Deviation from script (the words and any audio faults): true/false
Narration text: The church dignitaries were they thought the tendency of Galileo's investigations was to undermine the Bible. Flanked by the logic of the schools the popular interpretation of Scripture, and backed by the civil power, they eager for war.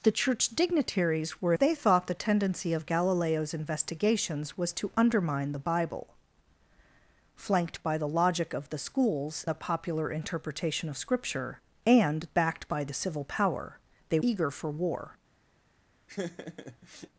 true